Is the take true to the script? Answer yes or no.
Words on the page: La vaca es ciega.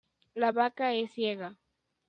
yes